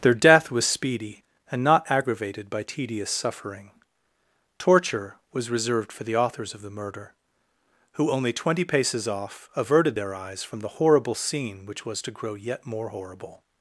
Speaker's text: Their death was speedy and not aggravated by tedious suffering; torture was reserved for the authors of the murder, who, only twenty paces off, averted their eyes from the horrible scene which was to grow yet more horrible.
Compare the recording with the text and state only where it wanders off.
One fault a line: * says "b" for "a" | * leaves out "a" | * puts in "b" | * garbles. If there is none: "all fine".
all fine